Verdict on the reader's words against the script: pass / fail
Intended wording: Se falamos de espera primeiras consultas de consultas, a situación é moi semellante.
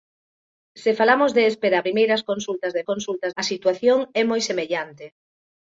pass